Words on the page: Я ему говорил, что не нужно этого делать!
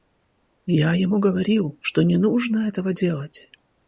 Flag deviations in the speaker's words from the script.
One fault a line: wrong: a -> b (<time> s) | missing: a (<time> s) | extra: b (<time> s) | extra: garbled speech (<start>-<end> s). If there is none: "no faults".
no faults